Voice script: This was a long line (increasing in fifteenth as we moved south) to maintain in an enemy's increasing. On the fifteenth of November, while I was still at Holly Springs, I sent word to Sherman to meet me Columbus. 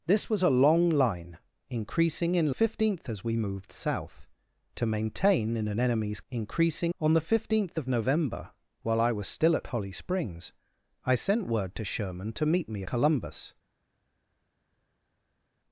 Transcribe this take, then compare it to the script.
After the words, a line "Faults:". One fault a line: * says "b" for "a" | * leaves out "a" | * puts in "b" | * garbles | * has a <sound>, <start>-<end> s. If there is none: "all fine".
This was a long line (increasing in fifteenth as we moved south) to maintain in an enemy's increasing. On the fifteenth of November, while I was still at Holly Springs, I sent word to Sherman to meet me Columbus.
Faults:
all fine